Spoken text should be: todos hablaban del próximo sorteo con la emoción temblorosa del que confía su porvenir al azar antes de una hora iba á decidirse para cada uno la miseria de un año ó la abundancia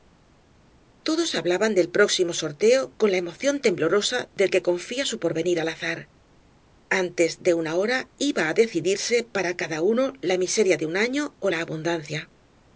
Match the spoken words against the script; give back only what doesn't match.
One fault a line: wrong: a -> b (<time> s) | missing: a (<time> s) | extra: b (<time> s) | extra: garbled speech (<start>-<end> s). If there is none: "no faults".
no faults